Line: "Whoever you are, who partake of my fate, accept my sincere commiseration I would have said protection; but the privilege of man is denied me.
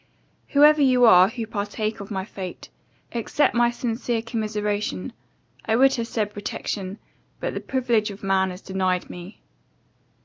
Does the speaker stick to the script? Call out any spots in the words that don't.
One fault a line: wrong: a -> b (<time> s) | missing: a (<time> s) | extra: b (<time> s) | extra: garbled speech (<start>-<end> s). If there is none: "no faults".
no faults